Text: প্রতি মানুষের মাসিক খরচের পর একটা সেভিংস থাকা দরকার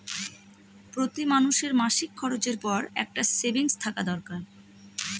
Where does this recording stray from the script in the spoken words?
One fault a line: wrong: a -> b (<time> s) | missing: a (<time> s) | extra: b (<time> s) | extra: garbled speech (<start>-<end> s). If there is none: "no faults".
no faults